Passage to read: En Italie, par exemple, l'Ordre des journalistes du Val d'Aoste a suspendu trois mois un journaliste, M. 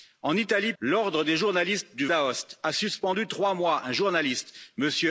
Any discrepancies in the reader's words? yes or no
yes